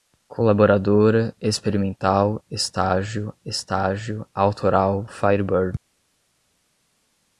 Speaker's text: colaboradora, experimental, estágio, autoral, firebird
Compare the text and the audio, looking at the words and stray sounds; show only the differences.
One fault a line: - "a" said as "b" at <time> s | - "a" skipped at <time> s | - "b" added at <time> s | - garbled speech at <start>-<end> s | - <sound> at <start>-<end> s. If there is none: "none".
- "estágio" added at 3.4 s